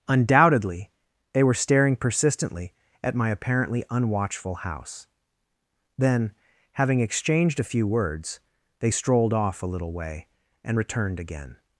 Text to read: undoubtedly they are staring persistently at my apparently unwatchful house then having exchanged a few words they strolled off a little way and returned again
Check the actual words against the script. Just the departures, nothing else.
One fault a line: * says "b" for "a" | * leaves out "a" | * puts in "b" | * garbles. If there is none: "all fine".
* says "were" for "are"